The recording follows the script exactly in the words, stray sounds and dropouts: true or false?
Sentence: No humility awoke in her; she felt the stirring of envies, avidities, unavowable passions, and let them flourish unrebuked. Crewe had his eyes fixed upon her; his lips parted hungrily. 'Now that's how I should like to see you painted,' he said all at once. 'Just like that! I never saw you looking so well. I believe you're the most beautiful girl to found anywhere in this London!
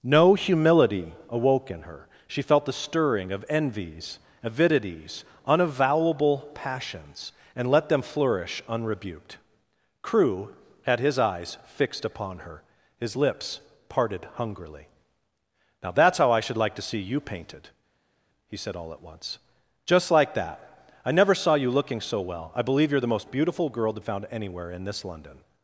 true